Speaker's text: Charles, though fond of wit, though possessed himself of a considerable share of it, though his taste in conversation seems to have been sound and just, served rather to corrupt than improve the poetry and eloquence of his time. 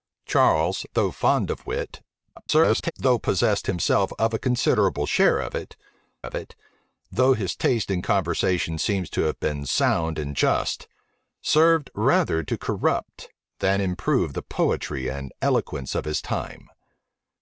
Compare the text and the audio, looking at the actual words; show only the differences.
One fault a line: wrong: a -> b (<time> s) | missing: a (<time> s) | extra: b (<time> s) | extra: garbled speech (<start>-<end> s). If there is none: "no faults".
extra: garbled speech (2.4-2.9 s)
extra: of it (6.2 s)